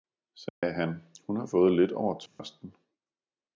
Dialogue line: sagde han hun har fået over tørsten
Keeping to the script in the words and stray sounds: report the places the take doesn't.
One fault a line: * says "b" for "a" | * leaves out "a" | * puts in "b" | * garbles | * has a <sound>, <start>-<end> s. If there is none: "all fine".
* has a dropout, 0.5-0.6 s
* puts in "lidt"
* has a dropout, 2.3-2.4 s